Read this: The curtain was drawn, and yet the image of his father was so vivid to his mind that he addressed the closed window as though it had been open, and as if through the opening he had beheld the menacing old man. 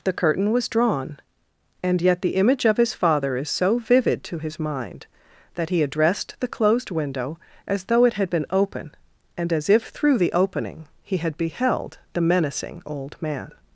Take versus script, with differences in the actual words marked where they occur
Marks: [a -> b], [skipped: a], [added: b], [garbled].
The curtain was drawn, and yet the image of his father [was -> is] so vivid to his mind that he addressed the closed window as though it had been open, and as if through the opening he had beheld the menacing old man.